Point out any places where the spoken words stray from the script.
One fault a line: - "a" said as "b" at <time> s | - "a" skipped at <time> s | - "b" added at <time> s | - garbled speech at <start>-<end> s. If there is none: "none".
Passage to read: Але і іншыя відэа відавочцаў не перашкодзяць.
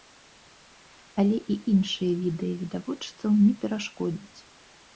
none